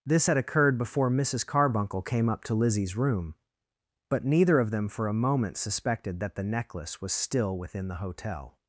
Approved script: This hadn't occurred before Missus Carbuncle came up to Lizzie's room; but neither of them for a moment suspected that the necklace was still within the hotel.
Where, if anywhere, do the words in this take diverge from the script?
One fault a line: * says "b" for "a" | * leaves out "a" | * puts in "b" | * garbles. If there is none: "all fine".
* says "had" for "hadn't"